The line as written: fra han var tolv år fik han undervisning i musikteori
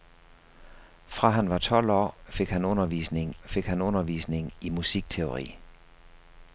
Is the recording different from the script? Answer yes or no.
yes